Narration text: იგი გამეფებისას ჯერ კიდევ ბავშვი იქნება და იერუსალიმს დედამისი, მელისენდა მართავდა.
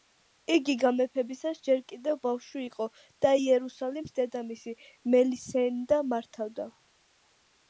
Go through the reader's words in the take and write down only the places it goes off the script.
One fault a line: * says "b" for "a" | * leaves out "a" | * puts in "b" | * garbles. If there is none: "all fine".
* says "იყო" for "იქნება"